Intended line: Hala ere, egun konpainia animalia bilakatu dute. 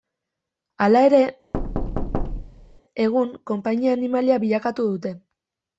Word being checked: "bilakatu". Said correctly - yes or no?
yes